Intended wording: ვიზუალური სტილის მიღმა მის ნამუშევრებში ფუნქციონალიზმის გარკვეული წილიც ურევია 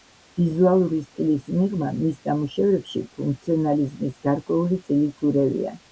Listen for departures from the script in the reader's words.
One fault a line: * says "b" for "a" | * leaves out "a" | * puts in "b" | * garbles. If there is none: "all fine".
all fine